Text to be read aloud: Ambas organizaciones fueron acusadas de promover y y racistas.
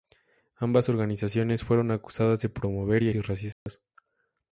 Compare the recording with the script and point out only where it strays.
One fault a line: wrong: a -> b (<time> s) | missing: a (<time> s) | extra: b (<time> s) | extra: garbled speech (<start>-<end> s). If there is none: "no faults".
no faults